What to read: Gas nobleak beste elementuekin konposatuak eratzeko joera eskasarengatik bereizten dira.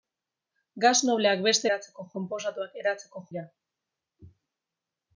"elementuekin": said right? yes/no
no